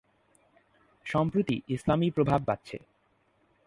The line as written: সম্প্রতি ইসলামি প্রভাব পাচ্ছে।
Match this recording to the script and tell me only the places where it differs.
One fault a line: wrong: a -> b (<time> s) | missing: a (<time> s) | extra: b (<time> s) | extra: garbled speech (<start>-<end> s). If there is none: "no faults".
no faults